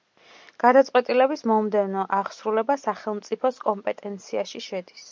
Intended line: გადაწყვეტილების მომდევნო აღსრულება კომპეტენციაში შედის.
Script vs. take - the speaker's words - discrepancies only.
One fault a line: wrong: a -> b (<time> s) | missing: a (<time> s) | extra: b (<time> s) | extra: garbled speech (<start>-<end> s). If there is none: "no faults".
extra: სახელმწიფოს (2.8 s)